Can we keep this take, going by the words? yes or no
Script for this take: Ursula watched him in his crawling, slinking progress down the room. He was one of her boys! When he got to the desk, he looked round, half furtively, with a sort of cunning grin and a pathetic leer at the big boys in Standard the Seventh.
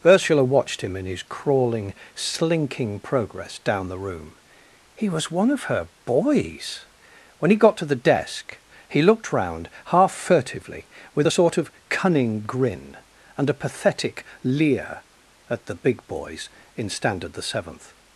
yes